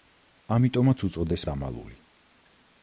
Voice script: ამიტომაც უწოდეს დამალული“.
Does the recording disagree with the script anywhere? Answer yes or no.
no